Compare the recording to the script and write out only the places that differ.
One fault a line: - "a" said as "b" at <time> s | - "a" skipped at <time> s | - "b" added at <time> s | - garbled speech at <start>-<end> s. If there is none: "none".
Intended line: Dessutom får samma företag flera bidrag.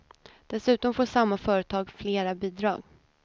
none